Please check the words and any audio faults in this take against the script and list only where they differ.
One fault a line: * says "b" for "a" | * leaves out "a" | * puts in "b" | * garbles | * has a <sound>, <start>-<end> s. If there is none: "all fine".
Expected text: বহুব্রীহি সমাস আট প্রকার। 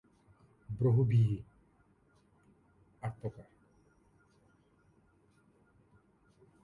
* leaves out "সমাস"